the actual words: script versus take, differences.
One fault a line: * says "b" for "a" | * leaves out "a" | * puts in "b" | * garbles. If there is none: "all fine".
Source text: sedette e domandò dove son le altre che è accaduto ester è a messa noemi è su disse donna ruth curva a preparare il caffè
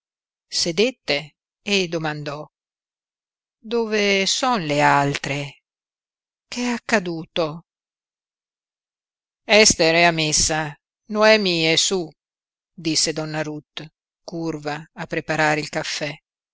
all fine